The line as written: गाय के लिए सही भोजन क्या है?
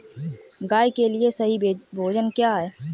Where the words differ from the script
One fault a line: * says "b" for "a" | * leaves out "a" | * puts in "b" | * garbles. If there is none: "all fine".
all fine